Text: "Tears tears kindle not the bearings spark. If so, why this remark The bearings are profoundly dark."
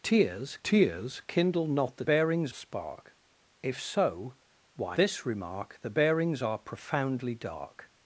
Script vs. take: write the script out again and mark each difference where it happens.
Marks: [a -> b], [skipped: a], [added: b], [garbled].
"Tears tears kindle not the bearings spark. If so, why this remark The bearings are profoundly dark."